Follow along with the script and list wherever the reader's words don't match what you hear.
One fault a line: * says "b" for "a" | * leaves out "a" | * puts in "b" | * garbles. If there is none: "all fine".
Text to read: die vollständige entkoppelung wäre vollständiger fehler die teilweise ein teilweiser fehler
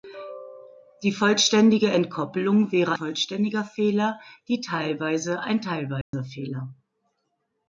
all fine